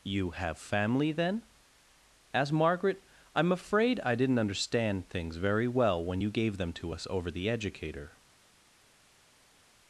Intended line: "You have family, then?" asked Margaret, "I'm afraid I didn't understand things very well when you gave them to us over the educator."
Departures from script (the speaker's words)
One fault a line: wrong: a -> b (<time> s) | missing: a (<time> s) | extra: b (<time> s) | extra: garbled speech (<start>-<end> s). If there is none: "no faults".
no faults